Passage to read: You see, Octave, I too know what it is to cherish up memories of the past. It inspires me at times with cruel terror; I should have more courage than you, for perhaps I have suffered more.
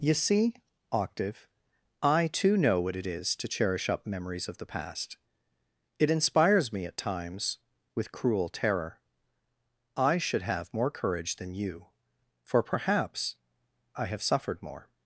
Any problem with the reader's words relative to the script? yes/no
no